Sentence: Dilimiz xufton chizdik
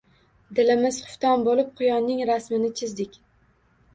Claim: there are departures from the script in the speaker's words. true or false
true